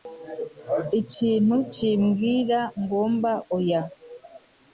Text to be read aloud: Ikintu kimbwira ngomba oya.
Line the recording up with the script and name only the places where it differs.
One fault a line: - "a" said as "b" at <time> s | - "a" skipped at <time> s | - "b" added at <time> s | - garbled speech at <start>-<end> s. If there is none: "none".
none